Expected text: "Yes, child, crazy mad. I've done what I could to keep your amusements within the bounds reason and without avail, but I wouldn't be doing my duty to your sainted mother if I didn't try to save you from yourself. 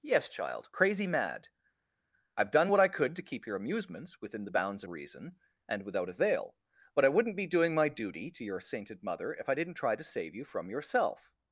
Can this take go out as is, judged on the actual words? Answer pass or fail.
pass